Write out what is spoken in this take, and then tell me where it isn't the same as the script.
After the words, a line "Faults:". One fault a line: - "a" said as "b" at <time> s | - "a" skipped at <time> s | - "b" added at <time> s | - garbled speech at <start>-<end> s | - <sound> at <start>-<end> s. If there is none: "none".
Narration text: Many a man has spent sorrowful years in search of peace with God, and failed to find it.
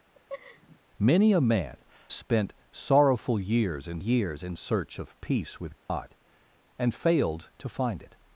Many a man spent sorrowful years in years in search of peace with God, and failed to find it.
Faults:
- laugh at 0.1-0.8 s
- "has" skipped at 1.8 s
- "years in" added at 4.0 s
- dropout at 5.8-5.9 s